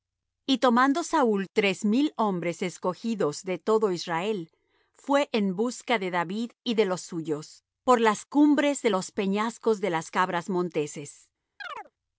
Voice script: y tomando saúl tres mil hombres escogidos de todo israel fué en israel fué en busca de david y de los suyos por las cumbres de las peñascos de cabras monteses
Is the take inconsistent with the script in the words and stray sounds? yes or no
yes